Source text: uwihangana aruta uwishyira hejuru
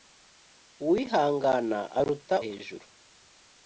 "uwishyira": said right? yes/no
no